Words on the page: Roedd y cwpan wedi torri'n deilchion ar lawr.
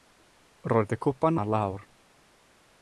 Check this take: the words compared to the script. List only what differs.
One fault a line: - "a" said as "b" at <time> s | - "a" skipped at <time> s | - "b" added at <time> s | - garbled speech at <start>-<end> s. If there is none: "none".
- "wedi torri'n deilchion" skipped at 1.4 s